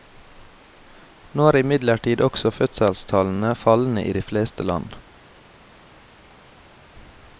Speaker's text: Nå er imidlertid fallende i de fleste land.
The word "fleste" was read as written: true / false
true